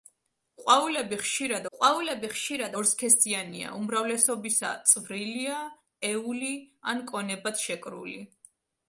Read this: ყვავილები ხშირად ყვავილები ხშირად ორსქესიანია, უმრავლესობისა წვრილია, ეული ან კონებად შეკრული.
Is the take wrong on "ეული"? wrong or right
right